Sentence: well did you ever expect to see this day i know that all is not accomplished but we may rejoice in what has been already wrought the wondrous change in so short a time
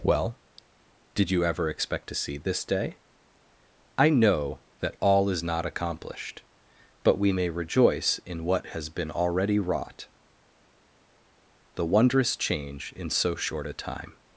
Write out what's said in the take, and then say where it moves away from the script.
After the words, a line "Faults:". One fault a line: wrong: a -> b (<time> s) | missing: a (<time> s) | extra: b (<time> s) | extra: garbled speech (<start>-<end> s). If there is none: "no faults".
well did you ever expect to see this day i know that all is not accomplished but we may rejoice in what has been already wrought the wondrous change in so short a time
Faults:
no faults